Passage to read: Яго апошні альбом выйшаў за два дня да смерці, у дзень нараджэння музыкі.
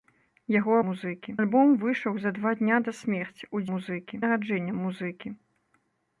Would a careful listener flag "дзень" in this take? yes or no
yes